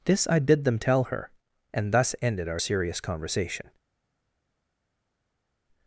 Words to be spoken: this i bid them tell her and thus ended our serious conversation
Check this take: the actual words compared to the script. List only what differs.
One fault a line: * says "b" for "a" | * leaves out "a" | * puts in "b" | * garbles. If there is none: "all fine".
all fine